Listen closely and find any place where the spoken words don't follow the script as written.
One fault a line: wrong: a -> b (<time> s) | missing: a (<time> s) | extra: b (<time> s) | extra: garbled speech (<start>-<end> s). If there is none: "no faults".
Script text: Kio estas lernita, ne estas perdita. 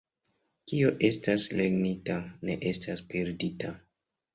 no faults